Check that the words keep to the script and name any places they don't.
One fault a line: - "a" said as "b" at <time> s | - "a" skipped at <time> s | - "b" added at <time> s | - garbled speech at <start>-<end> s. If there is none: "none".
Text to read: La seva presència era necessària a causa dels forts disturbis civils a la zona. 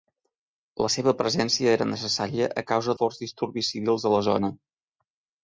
- "dels" skipped at 3.0 s